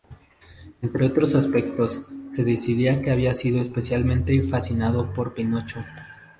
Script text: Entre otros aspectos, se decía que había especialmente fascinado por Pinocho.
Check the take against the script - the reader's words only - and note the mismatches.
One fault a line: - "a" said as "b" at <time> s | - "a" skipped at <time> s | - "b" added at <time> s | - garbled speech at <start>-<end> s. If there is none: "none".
- "sido" added at 3.4 s